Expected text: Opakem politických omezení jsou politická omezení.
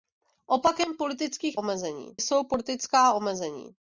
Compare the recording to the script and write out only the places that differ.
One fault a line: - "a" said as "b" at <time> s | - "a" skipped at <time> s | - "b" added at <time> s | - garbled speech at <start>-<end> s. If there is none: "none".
none